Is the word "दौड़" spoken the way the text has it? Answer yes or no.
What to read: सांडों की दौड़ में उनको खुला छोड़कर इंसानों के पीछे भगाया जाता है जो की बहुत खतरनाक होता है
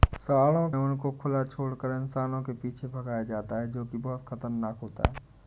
no